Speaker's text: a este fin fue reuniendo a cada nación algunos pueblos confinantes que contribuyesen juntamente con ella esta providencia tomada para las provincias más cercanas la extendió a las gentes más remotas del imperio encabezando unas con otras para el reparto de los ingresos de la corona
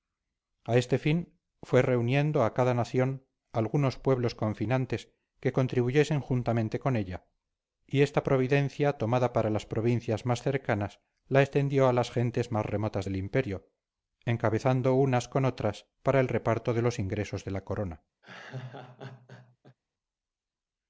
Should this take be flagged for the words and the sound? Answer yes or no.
yes